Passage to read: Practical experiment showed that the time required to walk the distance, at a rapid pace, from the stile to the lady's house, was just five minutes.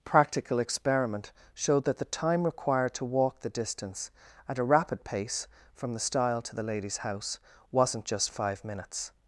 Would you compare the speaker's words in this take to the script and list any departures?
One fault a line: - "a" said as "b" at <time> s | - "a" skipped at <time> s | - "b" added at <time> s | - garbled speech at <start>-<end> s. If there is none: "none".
- "was" said as "wasn't" at 7.7 s